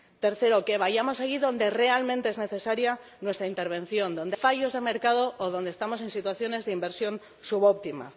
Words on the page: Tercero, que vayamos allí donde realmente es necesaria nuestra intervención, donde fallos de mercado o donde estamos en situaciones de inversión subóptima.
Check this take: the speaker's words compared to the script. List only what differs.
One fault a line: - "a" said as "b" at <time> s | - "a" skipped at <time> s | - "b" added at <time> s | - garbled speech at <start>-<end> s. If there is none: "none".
none